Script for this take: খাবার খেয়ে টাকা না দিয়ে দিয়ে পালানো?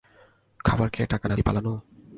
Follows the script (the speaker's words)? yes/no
no